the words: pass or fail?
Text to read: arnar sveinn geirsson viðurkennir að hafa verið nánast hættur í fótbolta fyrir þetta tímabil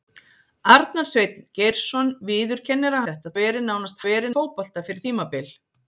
fail